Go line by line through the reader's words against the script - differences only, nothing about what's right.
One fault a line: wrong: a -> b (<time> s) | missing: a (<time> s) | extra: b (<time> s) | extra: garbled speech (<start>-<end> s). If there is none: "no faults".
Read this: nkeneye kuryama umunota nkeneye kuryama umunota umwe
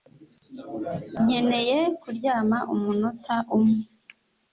missing: nkeneye kuryama umunota (3.4 s)